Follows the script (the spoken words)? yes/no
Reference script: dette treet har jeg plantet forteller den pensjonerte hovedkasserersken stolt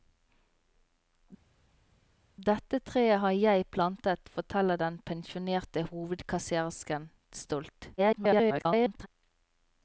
no